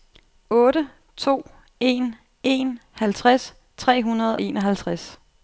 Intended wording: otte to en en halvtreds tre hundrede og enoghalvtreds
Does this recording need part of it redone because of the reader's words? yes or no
yes